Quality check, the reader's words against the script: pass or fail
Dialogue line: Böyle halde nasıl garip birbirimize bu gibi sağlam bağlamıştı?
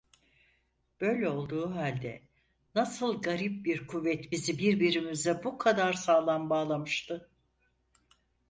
fail